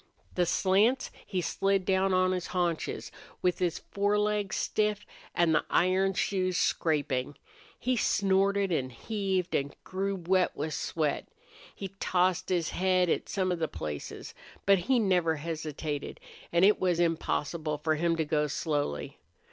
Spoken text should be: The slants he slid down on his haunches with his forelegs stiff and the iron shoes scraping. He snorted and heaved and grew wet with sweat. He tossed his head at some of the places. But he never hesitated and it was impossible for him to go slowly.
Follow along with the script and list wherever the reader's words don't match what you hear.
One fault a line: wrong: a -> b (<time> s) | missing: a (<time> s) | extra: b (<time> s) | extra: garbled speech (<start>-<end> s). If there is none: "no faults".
no faults